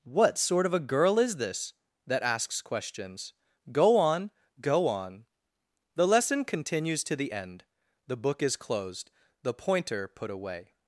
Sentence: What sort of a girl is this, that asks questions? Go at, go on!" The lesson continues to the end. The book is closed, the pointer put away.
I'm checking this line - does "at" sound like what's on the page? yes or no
no